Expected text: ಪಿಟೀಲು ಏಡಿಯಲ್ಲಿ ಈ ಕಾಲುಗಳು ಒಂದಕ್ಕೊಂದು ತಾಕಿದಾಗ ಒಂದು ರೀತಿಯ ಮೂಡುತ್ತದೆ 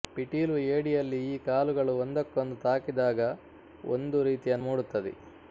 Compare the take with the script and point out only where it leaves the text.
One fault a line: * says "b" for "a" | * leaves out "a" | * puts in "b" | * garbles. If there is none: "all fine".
all fine